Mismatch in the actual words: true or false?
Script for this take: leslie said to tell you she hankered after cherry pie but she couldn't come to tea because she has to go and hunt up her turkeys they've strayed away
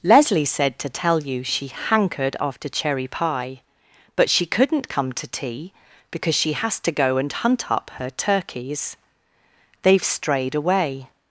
false